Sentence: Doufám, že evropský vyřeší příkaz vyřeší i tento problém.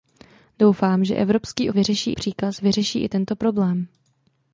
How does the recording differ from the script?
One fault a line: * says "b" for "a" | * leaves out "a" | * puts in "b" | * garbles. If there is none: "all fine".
all fine